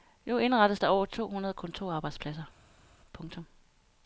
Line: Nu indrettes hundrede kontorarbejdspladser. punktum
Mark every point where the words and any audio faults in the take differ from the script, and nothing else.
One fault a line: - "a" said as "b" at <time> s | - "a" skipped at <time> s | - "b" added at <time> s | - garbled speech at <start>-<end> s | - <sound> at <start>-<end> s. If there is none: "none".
- "der over to" added at 0.8 s